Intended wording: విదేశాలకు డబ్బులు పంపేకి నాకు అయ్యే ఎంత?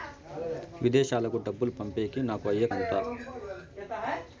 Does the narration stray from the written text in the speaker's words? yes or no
no